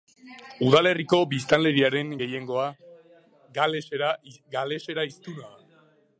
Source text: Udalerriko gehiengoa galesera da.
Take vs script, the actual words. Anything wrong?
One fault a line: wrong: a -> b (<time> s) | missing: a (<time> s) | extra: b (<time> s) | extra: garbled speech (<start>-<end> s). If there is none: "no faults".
extra: biztanleriaren (1.3 s)
extra: hiztuna (5.1 s)